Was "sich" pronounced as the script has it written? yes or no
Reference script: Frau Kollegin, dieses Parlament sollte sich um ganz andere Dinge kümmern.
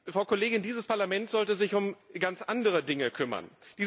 yes